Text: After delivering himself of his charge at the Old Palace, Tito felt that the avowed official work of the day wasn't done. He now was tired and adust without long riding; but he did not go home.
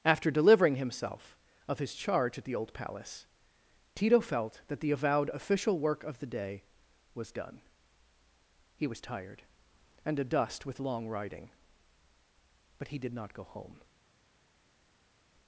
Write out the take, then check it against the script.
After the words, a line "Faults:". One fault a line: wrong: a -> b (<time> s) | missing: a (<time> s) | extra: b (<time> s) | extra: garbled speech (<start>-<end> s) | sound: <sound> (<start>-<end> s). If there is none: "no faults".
After delivering himself of his charge at the Old Palace, Tito felt that the avowed official work of the day was done. He was tired and adust with long riding; but he did not go home.
Faults:
wrong: wasn't -> was (7.1 s)
missing: now (8.9 s)
wrong: without -> with (10.7 s)